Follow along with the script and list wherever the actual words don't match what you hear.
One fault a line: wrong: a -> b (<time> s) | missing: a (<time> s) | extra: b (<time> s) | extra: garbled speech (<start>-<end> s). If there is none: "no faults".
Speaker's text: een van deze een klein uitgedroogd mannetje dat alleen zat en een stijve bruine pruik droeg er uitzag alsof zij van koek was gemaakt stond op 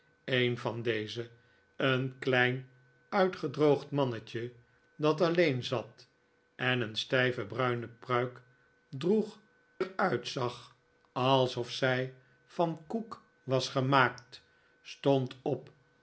no faults